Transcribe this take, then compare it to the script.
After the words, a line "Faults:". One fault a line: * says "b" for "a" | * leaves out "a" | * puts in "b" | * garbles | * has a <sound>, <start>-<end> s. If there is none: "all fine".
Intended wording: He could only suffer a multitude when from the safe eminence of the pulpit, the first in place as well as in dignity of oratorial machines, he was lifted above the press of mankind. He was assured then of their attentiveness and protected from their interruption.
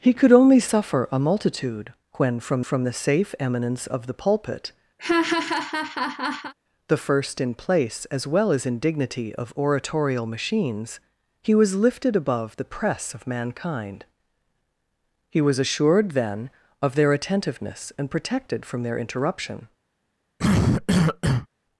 He could only suffer a multitude when from from the safe eminence of the pulpit, the first in place as well as in dignity of oratorial machines, he was lifted above the press of mankind. He was assured then of their attentiveness and protected from their interruption.
Faults:
* puts in "from"
* has a laugh, 5.0-6.5 s
* has a cough, 20.4-21.5 s